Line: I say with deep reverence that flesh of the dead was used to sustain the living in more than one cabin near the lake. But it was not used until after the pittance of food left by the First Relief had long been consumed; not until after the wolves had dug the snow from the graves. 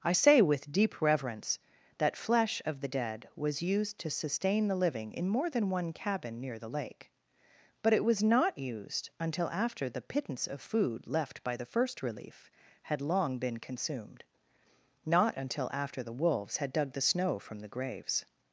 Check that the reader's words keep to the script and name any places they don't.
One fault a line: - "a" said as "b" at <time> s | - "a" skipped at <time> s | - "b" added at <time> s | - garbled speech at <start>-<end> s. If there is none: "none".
none